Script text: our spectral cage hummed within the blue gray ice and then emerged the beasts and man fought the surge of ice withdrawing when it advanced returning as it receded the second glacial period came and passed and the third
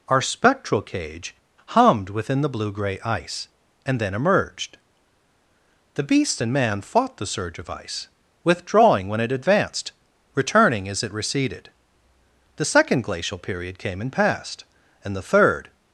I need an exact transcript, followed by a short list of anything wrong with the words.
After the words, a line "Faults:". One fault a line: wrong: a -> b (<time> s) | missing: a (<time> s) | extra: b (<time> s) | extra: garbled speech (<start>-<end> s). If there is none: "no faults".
our spectral cage hummed within the blue gray ice and then emerged the beast and man fought the surge of ice withdrawing when it advanced returning as it receded the second glacial period came and passed and the third
Faults:
wrong: beasts -> beast (6.0 s)